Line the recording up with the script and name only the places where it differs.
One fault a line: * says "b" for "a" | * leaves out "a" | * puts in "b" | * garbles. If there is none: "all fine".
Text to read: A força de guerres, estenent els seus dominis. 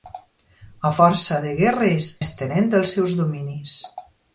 all fine